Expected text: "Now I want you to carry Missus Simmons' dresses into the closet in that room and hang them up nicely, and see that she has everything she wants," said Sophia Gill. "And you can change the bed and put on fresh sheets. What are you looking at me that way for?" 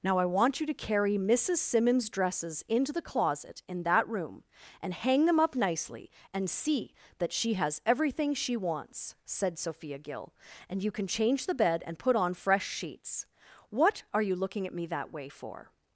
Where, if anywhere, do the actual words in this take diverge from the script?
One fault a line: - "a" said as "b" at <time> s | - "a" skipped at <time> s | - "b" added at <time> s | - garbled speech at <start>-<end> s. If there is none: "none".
none